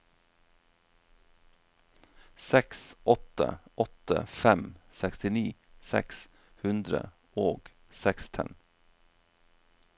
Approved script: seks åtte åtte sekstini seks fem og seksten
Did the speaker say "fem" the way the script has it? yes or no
no